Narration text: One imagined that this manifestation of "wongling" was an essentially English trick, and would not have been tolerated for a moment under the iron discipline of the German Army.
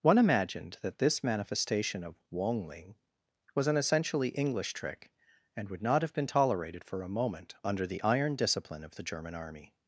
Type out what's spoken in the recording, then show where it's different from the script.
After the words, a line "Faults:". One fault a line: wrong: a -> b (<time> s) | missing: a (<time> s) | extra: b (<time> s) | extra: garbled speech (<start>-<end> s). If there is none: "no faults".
One imagined that this manifestation of "wongling" was an essentially English trick, and would not have been tolerated for a moment under the iron discipline of the German Army.
Faults:
no faults